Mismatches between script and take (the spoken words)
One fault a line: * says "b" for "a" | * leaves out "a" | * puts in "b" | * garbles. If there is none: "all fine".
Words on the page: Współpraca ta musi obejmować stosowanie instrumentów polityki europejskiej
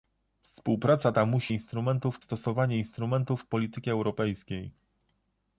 * says "instrumentów" for "obejmować"